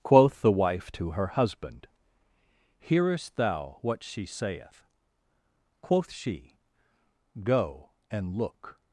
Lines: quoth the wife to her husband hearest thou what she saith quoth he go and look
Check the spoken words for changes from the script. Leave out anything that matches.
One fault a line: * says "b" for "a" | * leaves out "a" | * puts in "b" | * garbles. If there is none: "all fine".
* says "she" for "he"